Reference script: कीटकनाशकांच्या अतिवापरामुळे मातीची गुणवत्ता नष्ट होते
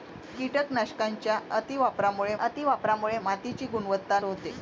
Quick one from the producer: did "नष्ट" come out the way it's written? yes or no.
no